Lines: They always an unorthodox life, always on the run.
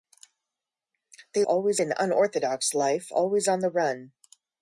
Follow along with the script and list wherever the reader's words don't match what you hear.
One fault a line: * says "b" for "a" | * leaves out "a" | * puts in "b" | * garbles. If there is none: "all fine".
all fine